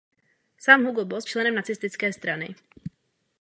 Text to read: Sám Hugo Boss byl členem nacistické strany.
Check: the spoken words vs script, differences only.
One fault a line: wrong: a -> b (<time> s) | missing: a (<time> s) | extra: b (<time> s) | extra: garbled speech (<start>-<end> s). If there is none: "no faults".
missing: byl (1.3 s)